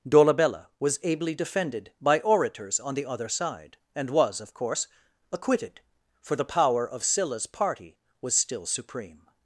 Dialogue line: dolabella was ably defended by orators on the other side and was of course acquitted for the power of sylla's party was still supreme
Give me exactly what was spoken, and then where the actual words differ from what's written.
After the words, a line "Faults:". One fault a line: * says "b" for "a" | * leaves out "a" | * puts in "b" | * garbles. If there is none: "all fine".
dolabella was ably defended by orators on the other side and was of course acquitted for the power of sylla's party was still supreme
Faults:
all fine